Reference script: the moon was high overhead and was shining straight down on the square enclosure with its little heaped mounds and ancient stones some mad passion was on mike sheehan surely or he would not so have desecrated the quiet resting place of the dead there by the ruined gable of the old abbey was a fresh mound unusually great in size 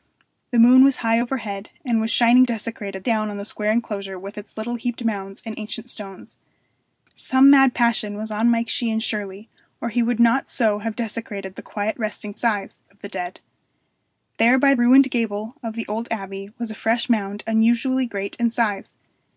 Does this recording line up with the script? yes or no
no